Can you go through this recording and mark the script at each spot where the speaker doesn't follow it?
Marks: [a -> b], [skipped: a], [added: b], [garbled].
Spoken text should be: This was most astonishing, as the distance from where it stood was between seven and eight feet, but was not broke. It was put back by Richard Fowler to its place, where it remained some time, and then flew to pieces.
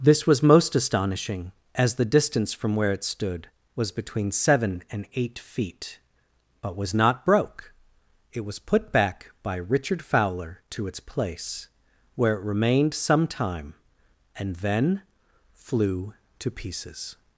This was most astonishing, as the distance from where it stood was between seven and eight feet, but was not broke. It was put back by Richard Fowler to its place, where it remained some time, and then flew to pieces.